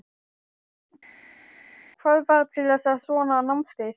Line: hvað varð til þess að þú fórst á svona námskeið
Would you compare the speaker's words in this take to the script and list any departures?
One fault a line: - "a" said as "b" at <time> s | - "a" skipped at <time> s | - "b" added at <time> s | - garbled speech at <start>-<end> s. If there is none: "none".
- "þú fórst" skipped at 3.0 s